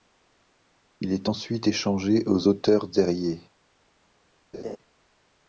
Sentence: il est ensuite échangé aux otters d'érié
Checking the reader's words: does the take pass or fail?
pass